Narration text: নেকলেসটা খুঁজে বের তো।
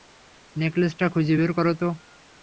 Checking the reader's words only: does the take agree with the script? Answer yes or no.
no